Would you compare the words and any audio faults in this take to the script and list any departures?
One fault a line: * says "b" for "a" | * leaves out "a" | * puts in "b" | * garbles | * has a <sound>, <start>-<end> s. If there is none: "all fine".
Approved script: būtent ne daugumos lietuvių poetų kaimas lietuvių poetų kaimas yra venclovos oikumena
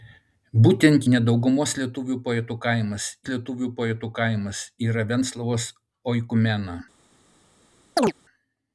* has a chirp, 8.0-8.1 s